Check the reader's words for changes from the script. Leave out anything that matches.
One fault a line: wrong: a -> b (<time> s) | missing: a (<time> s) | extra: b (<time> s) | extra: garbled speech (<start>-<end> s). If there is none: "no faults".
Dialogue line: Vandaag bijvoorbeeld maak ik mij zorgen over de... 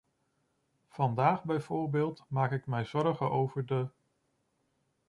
no faults